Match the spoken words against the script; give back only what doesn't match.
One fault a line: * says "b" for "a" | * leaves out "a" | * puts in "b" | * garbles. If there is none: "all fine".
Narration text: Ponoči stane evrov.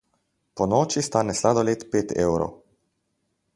* puts in "sladoled pet"